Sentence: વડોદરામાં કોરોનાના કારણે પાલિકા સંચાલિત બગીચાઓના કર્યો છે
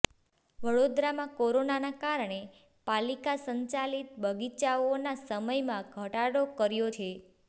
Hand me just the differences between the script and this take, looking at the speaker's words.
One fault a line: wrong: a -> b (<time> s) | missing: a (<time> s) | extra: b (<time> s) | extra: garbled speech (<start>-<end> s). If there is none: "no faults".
extra: સમયમાં ઘટાડો (5.2 s)